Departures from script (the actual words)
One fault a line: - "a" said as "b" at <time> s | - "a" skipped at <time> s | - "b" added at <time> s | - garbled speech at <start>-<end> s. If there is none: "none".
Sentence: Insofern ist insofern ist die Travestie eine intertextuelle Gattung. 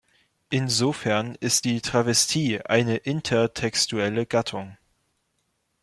- "insofern ist" skipped at 1.7 s